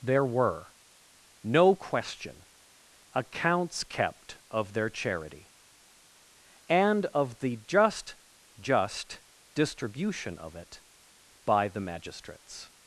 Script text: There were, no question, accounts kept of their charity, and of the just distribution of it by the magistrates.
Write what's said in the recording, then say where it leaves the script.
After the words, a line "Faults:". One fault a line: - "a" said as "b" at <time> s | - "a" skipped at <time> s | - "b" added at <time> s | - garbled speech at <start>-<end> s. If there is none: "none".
There were, no question, accounts kept of their charity, and of the just just distribution of it by the magistrates.
Faults:
- "just" added at 8.6 s